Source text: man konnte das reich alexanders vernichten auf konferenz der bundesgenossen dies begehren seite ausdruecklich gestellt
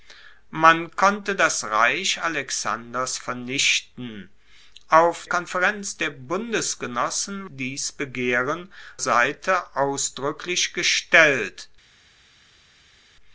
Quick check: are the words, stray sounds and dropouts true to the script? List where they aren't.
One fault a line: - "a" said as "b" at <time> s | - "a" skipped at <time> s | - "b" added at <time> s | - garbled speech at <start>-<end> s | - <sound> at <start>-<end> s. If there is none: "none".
none